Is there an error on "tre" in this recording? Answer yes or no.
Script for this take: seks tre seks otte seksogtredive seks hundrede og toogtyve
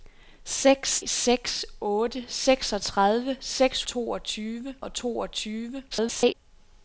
yes